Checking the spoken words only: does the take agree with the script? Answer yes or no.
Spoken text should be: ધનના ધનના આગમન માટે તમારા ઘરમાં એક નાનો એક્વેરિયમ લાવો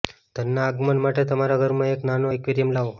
no